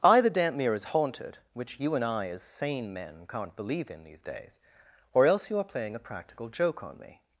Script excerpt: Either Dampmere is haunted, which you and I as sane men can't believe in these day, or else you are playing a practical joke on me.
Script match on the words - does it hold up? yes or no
no